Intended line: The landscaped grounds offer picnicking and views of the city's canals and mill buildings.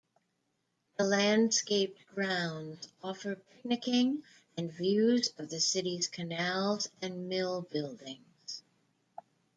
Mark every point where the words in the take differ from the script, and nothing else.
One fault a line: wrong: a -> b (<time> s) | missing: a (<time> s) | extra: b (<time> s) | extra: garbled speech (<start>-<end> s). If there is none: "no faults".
no faults